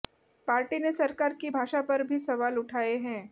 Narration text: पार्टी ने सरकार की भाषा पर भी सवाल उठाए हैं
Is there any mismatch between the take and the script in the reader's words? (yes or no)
no